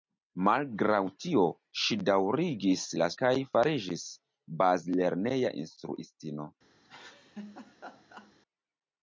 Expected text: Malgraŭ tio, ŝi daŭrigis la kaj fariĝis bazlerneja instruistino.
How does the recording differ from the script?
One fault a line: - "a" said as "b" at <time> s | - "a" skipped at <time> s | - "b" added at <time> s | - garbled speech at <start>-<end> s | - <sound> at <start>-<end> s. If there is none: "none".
- laugh at 6.8-8.3 s